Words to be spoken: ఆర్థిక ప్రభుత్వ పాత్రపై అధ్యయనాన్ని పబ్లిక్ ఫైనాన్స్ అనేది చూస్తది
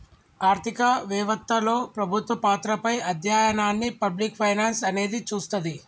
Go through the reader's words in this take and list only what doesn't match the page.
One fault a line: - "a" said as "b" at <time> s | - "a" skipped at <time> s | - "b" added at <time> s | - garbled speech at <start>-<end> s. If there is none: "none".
- "వెవత్తలో" added at 1.1 s